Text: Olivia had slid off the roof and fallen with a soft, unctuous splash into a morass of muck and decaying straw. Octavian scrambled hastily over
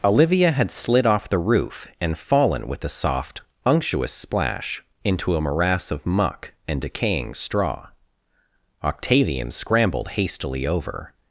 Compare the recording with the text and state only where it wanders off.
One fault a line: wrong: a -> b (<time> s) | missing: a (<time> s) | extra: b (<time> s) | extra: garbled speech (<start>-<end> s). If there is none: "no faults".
no faults